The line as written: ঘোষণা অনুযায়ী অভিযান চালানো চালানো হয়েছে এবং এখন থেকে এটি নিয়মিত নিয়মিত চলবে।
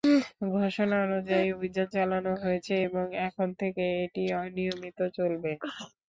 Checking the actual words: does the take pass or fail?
fail